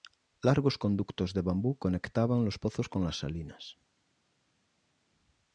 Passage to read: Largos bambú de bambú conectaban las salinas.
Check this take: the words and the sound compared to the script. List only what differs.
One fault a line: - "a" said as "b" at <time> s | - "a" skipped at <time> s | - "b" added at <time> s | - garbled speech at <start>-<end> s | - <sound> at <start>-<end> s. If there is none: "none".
- "bambú" said as "conductos" at 0.8 s
- "los pozos con" added at 2.4 s